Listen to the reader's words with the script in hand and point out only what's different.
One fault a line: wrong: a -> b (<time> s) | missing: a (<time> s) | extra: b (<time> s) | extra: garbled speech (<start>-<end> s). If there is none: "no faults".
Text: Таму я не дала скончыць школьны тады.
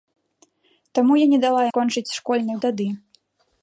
no faults